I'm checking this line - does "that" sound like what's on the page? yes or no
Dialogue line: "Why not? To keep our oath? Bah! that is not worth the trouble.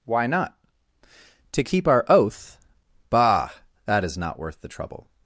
yes